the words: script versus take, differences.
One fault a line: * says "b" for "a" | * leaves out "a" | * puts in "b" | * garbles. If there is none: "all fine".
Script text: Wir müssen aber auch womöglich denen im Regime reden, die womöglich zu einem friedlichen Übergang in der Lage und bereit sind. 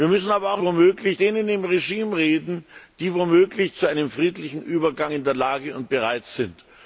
all fine